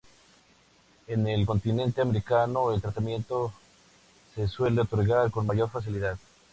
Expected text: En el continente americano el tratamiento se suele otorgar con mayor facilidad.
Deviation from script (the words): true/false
false